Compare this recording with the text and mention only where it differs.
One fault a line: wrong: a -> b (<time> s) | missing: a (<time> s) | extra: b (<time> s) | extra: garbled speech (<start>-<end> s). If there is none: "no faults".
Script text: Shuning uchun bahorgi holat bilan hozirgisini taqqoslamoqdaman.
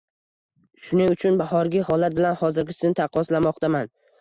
no faults